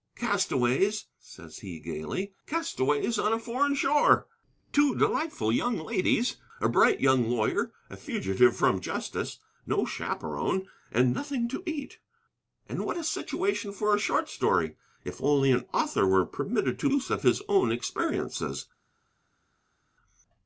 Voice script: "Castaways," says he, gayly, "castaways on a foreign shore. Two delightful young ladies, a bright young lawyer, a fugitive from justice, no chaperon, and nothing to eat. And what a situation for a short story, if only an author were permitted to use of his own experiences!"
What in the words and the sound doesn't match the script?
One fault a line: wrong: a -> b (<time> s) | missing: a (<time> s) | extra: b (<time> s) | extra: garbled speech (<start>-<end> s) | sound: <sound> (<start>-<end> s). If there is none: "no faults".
no faults